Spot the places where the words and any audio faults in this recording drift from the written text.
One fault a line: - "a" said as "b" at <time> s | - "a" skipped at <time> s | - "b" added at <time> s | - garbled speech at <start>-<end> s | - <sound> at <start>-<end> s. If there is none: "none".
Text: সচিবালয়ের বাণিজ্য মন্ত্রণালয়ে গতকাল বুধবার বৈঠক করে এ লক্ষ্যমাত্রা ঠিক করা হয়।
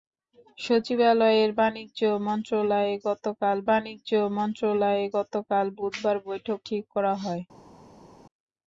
- "বুধবার বৈঠক করে এ লক্ষ্যমাত্রা" said as "বাণিজ্য মন্ত্রণালয়ে গতকাল বুধবার বৈঠক" at 3.7 s